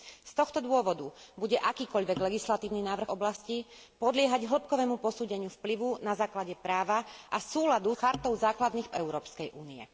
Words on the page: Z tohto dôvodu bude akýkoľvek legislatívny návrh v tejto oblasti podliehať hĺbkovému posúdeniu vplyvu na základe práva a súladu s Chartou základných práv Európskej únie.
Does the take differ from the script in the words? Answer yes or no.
yes